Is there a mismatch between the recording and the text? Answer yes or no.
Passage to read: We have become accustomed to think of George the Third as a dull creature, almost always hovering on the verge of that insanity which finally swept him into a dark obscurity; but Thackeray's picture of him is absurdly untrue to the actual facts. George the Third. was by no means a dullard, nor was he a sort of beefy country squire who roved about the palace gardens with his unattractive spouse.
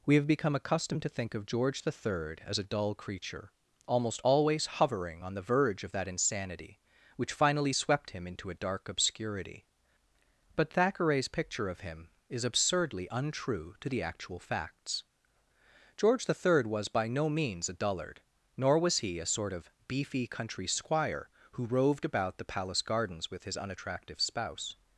no